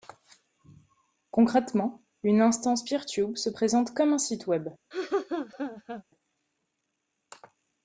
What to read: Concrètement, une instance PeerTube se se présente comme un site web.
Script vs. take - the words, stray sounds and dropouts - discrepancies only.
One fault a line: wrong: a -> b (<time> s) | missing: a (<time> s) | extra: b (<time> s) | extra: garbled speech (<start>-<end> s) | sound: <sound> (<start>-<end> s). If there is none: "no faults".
missing: se (3.5 s)
sound: laugh (4.9-6.0 s)